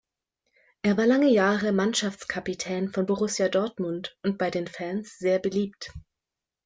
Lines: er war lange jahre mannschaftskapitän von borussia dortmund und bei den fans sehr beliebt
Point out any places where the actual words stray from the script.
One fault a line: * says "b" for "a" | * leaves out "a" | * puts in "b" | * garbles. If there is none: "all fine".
all fine